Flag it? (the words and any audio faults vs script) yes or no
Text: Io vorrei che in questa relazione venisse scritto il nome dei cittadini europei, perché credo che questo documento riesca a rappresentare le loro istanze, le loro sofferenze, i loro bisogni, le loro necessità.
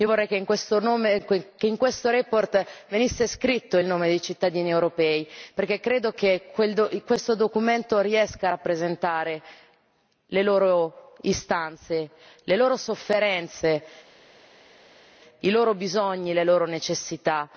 no